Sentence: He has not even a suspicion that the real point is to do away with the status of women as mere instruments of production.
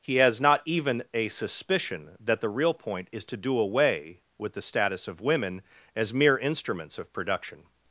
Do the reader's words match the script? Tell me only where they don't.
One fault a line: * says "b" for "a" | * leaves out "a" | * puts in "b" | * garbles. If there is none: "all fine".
all fine